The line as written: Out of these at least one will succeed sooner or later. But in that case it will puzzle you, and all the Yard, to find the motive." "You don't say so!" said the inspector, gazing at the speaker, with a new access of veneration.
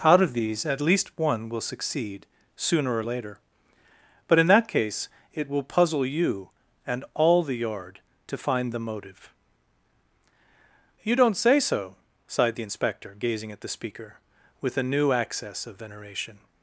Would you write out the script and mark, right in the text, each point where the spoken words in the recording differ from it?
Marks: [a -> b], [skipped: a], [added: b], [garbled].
Out of these at least one will succeed sooner or later. But in that case it will puzzle you, and all the Yard, to find the motive." "You don't say so!" [said -> sighed] the inspector, gazing at the speaker, with a new access of veneration.